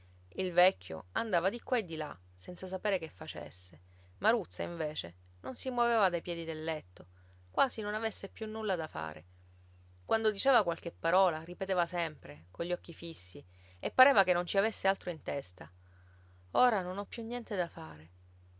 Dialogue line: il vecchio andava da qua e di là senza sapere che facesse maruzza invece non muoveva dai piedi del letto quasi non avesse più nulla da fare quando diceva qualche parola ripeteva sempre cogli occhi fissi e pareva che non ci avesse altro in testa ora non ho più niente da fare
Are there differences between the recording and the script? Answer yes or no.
yes